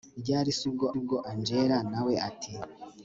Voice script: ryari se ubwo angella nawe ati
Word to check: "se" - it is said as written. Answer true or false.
true